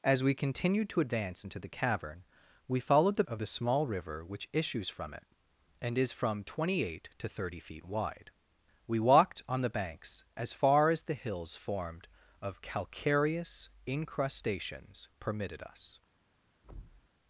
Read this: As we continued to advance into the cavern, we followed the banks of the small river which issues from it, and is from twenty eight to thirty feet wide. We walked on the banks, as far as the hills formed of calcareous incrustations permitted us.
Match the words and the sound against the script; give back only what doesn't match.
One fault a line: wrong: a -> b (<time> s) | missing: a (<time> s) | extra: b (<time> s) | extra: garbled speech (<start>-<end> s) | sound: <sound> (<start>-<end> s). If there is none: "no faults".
missing: banks (3.2 s)
sound: thud (16.6-17.1 s)